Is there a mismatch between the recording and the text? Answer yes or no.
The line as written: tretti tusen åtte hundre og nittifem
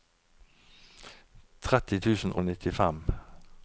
yes